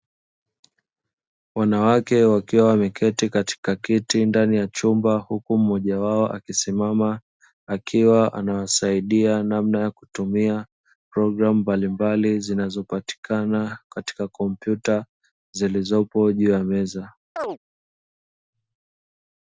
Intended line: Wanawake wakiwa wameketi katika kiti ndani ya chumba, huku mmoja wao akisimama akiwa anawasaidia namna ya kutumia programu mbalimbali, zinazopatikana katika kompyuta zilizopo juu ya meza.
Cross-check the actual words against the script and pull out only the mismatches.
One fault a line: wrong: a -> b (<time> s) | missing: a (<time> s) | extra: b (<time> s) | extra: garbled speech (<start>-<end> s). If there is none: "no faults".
no faults